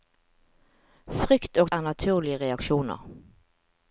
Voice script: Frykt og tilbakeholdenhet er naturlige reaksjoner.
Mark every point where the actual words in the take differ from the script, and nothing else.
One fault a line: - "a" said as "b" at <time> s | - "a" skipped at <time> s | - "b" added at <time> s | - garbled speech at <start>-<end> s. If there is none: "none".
- "tilbakeholdenhet" skipped at 1.7 s